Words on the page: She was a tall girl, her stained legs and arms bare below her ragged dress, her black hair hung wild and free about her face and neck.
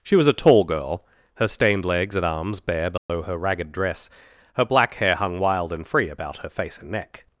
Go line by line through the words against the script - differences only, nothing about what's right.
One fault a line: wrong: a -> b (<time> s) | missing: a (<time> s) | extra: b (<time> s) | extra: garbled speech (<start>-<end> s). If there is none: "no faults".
no faults